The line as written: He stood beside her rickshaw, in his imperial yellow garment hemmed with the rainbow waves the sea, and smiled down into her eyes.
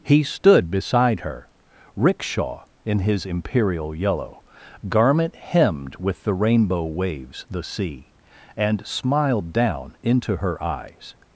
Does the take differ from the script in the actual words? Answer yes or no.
no